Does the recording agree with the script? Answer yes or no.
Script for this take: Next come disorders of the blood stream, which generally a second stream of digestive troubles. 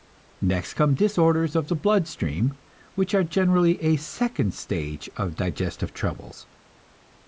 no